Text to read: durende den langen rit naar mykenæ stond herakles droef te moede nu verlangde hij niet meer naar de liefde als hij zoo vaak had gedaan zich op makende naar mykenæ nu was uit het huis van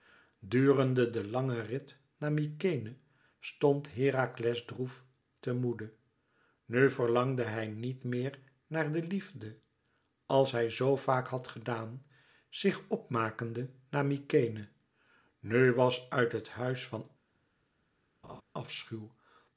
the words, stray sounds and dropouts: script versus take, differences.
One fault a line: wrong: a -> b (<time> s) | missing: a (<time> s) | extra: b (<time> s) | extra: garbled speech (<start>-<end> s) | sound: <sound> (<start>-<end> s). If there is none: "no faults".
sound: laugh (18.2-18.4 s)